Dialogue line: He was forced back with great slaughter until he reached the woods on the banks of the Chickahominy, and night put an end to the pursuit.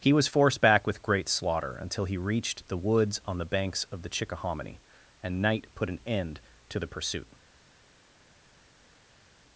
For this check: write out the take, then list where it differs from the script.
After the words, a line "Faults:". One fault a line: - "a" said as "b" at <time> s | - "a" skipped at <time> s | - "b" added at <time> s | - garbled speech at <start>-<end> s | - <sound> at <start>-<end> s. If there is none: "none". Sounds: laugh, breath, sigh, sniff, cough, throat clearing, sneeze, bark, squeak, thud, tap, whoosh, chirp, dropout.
He was forced back with great slaughter until he reached the woods on the banks of the Chickahominy, and night put an end to the pursuit.
Faults:
none